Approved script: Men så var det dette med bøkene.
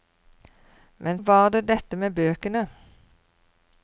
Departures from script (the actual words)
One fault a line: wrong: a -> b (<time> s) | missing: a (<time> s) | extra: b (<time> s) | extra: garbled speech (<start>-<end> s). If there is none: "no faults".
missing: så (1.2 s)